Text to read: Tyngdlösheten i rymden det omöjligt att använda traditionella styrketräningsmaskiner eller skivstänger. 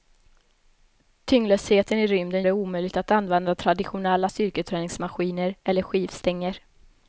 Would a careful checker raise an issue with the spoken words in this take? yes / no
no